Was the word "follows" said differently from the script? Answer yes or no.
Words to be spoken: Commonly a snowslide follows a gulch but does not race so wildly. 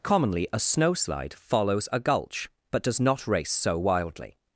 no